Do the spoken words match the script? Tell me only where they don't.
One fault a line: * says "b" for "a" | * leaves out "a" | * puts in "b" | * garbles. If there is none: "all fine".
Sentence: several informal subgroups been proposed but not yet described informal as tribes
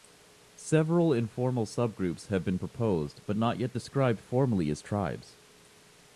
* puts in "have"
* says "formally" for "informal"